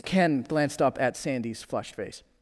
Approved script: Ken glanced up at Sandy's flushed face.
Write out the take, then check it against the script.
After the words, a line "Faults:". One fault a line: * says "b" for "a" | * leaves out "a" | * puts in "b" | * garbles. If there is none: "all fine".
Ken glanced up at Sandy's flushed face.
Faults:
all fine